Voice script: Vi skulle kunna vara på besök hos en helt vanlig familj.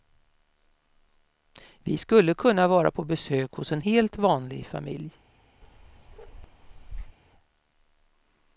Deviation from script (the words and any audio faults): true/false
true